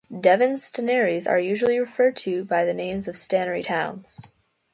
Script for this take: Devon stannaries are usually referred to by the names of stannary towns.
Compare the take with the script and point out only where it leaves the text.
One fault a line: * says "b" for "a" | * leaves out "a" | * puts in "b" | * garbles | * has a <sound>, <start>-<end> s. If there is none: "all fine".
all fine